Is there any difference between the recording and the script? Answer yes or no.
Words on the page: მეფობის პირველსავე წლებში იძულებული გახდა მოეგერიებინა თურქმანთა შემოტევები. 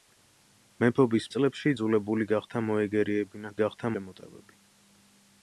yes